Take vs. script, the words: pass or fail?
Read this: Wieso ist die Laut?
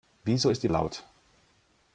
pass